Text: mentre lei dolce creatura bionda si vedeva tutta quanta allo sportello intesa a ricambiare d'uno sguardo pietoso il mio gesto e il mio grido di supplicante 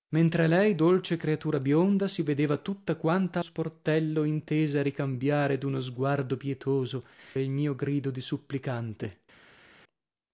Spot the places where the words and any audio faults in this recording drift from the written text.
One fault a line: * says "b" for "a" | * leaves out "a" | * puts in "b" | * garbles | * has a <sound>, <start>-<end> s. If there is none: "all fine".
* leaves out "allo"
* leaves out "il mio gesto"